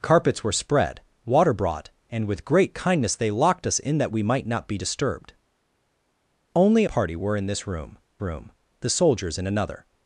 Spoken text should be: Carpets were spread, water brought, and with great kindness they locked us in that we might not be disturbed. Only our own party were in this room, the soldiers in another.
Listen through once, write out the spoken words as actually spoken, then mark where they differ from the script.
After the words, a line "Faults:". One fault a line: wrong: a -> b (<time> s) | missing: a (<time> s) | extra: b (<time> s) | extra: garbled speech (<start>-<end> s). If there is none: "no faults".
Carpets were spread, water brought, and with great kindness they locked us in that we might not be disturbed. Only party were in this room room, the soldiers in another.
Faults:
missing: our own (6.9 s)
extra: room (8.2 s)